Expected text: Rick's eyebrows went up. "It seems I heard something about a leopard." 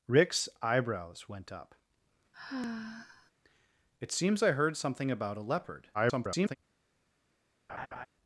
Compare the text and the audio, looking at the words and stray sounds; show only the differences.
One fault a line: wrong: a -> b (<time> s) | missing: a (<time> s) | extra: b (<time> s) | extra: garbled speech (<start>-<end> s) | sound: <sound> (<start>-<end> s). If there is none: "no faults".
sound: sigh (2.3-3.3 s)
extra: garbled speech (5.9-6.6 s)
sound: laugh (7.7-8.1 s)